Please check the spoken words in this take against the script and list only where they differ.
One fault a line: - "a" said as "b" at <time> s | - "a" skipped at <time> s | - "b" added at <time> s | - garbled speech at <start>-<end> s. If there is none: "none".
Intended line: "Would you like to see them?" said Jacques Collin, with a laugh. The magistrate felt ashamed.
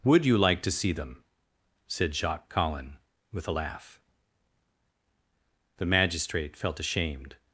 none